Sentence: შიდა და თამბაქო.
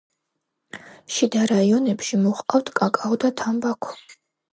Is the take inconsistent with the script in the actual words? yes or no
yes